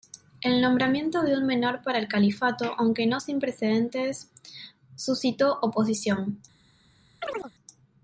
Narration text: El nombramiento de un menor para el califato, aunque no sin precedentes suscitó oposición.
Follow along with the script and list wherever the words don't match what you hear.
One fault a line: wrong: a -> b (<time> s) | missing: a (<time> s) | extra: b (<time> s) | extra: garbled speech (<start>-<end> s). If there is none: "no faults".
no faults